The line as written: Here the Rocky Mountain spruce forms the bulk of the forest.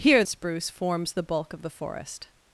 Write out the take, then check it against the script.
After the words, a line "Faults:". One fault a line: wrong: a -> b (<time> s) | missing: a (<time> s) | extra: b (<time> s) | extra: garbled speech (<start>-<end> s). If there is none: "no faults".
Here spruce forms the bulk of the forest.
Faults:
missing: the Rocky Mountain (0.2 s)